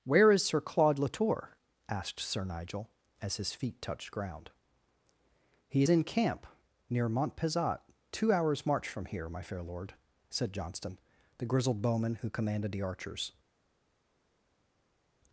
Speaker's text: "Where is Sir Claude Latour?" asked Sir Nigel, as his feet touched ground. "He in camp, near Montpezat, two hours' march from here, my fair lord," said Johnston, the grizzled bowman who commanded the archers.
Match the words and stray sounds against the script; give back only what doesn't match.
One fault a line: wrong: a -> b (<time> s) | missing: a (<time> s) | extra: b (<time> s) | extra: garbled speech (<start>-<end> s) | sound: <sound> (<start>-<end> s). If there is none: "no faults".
no faults